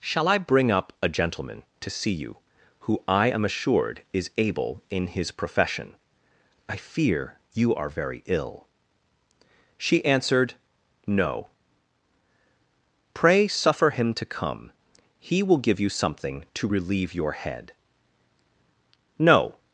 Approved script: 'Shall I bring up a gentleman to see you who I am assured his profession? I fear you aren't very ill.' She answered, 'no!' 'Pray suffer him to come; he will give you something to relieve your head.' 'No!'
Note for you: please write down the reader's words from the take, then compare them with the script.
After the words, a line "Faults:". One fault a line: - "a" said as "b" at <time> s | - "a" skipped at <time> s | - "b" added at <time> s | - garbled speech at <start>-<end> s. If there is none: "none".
'Shall I bring up a gentleman to see you who I am assured is able in his profession? I fear you are very ill.' She answered, 'no!' 'Pray suffer him to come; he will give you something to relieve your head.' 'No!'
Faults:
- "is able in" added at 4.1 s
- "aren't" said as "are" at 7.8 s